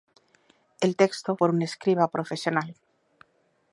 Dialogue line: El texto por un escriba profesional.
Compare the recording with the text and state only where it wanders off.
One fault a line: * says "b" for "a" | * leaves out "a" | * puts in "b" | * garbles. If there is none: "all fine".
all fine